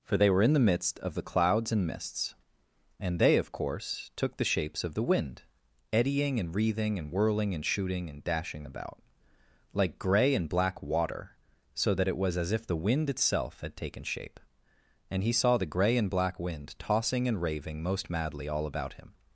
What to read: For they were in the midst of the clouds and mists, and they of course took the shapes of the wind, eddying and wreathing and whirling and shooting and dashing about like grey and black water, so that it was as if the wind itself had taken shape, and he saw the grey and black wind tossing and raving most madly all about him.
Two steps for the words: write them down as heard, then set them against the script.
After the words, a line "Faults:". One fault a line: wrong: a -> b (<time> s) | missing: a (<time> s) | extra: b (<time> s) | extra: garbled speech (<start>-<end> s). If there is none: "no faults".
For they were in the midst of the clouds and mists, and they of course took the shapes of the wind, eddying and wreathing and whirling and shooting and dashing about like grey and black water, so that it was as if the wind itself had taken shape, and he saw the grey and black wind tossing and raving most madly all about him.
Faults:
no faults